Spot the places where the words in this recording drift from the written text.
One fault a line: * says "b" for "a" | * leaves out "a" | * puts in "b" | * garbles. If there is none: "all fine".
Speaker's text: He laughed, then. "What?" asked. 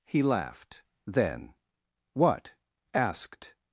all fine